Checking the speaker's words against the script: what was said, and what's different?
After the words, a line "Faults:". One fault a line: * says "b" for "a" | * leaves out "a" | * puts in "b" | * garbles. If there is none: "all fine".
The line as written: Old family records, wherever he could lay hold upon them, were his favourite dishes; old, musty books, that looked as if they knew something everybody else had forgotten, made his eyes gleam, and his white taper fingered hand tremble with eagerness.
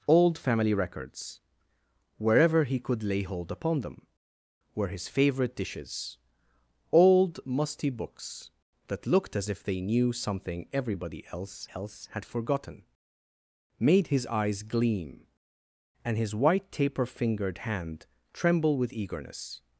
Old family records, wherever he could lay hold upon them, were his favourite dishes; old, musty books, that looked as if they knew something everybody else else had forgotten, made his eyes gleam, and his white taper fingered hand tremble with eagerness.
Faults:
* puts in "else"